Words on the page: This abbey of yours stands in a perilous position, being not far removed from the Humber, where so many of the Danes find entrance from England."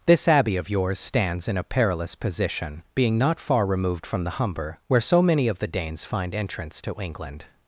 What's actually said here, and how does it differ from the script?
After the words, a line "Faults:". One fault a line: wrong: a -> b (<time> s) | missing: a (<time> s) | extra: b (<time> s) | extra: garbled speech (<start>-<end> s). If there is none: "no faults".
This abbey of yours stands in a perilous position, being not far removed from the Humber, where so many of the Danes find entrance to England."
Faults:
wrong: from -> to (6.8 s)